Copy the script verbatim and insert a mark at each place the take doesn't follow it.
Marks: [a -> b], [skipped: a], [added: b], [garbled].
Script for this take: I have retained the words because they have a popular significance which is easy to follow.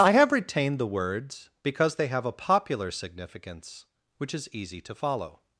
I have retained the words because they have a popular significance which is easy to follow.